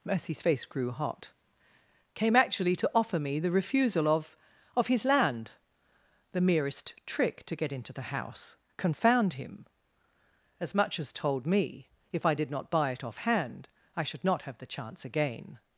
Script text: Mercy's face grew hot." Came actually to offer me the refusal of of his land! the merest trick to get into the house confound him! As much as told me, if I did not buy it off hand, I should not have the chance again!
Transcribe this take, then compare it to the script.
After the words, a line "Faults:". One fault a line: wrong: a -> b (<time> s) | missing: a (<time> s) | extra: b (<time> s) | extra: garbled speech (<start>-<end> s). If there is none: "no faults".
Mercy's face grew hot." Came actually to offer me the refusal of of his land! the merest trick to get into the house confound him! As much as told me, if I did not buy it off hand, I should not have the chance again!
Faults:
no faults